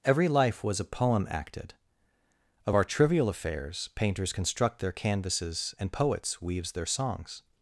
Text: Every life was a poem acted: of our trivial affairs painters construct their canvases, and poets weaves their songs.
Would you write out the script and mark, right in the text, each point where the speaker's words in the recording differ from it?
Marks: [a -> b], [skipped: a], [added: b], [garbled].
Every life was a poem acted: of our trivial affairs painters construct their canvases, and poets weaves their songs.